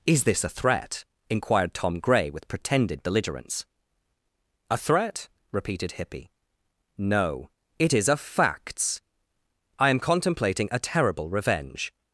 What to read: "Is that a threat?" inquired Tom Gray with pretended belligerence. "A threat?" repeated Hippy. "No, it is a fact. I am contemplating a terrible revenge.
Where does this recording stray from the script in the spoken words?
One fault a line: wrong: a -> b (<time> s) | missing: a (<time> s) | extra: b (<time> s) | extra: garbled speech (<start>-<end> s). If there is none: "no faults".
wrong: that -> this (0.2 s)
wrong: fact -> facts (8.2 s)